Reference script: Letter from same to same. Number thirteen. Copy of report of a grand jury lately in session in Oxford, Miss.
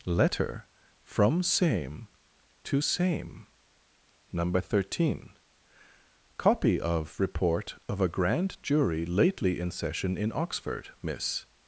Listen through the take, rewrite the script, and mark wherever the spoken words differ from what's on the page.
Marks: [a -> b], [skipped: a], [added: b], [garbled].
Letter from same to same. Number thirteen. Copy of report of a grand jury lately in session in Oxford, Miss.